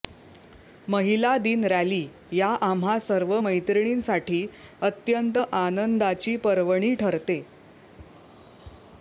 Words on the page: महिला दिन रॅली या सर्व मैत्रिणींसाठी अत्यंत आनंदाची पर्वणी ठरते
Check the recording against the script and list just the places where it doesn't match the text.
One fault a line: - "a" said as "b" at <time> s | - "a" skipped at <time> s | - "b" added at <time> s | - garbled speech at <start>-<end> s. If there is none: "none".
- "आम्हा" added at 2.6 s